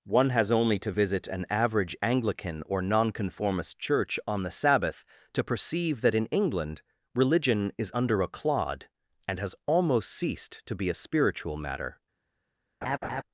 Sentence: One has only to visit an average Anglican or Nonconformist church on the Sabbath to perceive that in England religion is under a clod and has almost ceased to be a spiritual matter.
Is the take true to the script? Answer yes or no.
yes